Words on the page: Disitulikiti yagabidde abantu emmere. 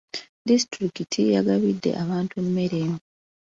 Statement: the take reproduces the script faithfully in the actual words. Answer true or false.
true